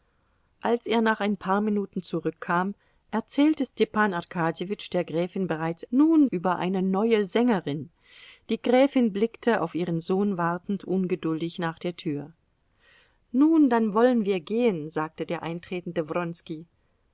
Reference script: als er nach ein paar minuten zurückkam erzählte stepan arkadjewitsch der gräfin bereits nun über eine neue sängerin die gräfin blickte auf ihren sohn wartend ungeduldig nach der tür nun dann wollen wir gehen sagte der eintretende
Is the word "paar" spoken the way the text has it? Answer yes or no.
yes